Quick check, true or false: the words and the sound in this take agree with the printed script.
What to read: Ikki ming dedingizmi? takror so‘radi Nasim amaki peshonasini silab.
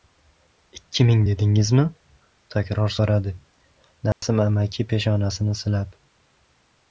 false